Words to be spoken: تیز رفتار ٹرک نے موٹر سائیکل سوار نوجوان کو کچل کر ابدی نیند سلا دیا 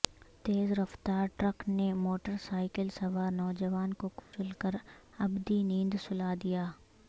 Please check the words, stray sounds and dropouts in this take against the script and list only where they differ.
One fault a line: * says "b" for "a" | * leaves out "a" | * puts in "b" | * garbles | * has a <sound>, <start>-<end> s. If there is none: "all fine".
* has a dropout, 4.2-4.3 s